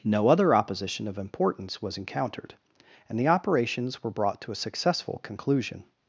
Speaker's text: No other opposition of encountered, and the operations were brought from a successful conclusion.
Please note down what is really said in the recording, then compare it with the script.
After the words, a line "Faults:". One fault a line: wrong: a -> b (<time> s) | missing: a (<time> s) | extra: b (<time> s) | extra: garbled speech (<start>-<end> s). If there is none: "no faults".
No other opposition of importance was encountered, and the operations were brought to a successful conclusion.
Faults:
extra: importance was (1.2 s)
wrong: from -> to (4.4 s)